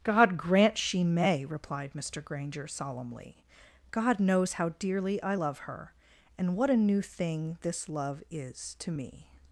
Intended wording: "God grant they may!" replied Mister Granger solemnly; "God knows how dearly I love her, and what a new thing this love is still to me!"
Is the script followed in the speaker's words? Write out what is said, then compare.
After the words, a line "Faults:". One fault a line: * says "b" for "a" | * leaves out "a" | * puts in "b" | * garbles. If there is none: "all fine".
"God grant she may!" replied Mister Granger solemnly; "God knows how dearly I love her, and what a new thing this love is to me!"
Faults:
* says "she" for "they"
* leaves out "still"